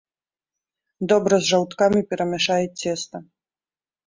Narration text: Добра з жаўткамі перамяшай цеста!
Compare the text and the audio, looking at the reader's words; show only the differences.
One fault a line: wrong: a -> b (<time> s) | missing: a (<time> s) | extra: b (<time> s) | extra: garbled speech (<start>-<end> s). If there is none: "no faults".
no faults